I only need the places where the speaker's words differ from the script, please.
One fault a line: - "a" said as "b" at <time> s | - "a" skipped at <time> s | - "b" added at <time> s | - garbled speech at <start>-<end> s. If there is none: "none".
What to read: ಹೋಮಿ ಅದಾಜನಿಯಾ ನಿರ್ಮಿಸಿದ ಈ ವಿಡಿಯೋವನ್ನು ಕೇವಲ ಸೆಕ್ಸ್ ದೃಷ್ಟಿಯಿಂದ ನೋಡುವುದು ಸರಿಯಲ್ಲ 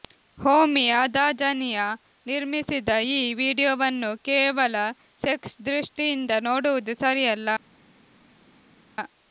none